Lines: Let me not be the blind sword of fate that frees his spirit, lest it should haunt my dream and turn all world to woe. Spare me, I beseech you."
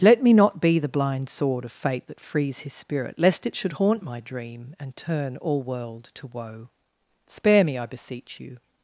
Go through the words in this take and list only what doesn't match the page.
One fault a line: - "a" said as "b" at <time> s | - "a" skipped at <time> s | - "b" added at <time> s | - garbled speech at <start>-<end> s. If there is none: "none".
none